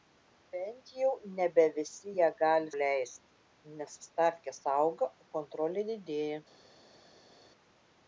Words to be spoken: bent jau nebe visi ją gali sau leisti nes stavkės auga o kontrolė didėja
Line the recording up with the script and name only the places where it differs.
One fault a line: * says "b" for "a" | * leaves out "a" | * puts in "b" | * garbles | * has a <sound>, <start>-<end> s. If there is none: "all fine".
* leaves out "sau"